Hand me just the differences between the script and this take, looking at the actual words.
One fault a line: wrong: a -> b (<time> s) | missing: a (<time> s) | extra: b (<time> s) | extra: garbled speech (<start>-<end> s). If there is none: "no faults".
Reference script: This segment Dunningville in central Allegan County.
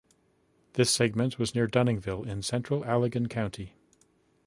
extra: was near (1.4 s)